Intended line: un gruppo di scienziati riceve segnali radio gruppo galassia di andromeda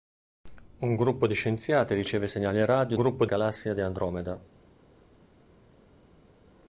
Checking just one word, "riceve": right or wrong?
right